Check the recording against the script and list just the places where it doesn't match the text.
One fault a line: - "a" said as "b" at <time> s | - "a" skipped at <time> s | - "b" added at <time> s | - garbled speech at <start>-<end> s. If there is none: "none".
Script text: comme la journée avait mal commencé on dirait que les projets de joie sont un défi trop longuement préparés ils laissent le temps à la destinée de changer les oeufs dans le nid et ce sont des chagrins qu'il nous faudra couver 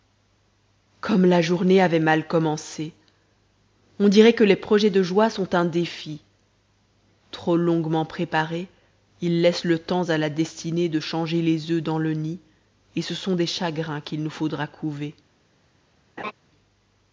none